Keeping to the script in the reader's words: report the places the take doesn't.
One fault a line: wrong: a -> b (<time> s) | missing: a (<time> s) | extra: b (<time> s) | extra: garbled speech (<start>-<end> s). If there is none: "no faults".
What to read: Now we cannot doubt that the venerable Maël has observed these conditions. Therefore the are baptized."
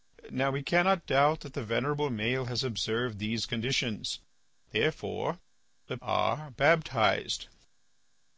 no faults